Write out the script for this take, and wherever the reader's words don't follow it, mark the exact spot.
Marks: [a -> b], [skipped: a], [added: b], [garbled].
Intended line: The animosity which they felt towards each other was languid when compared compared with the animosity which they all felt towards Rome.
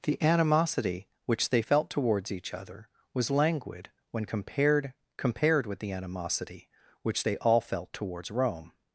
The animosity which they felt towards each other was languid when compared compared with the animosity which they all felt towards Rome.